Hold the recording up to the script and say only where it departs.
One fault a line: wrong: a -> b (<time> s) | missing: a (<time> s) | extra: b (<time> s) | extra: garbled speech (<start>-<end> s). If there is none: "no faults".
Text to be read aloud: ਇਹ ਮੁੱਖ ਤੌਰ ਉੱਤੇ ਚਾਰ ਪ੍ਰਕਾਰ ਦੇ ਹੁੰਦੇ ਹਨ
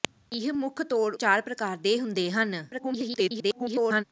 missing: ਉੱਤੇ (1.1 s)
extra: garbled speech (2.7-4.0 s)